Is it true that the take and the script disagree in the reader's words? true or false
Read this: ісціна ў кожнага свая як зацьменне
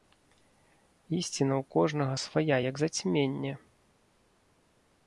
false